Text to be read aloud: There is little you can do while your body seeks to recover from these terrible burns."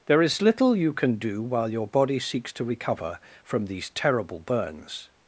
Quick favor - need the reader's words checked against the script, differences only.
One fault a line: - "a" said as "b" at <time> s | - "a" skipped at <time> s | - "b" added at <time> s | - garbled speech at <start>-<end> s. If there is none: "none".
none